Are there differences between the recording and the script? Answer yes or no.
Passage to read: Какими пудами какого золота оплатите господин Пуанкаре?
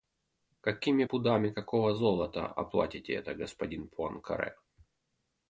yes